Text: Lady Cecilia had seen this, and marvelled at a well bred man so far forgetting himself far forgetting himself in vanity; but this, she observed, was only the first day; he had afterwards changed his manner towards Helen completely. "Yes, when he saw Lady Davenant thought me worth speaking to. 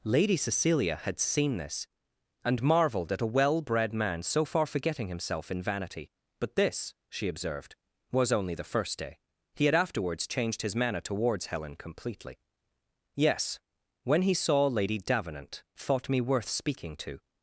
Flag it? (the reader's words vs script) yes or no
yes